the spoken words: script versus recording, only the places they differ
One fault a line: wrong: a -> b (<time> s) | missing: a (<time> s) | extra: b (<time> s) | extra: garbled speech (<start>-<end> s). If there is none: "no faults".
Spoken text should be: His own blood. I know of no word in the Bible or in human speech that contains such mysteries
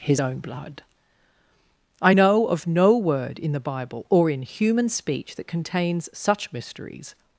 no faults